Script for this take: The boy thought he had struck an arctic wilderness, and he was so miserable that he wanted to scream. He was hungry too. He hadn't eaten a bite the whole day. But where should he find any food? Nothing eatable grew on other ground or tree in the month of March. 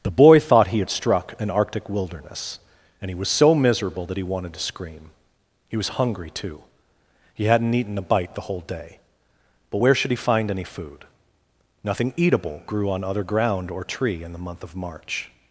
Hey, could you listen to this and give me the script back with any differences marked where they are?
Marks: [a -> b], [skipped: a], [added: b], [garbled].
The boy thought he had struck an arctic wilderness, and he was so miserable that he wanted to scream. He was hungry too. He hadn't eaten a bite the whole day. But where should he find any food? Nothing eatable grew on other ground or tree in the month of March.